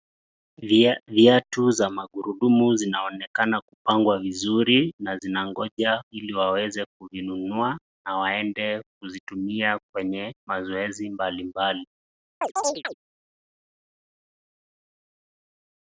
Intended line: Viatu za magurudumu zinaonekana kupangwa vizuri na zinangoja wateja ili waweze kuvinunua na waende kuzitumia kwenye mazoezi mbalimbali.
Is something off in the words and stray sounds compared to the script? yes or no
yes